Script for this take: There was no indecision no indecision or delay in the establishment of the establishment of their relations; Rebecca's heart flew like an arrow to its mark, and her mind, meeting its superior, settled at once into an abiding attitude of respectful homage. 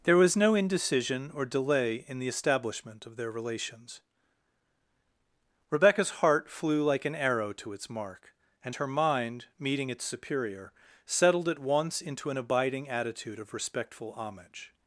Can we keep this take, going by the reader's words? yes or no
no